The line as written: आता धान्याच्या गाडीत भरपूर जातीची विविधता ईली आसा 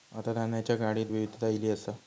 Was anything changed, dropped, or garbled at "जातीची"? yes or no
yes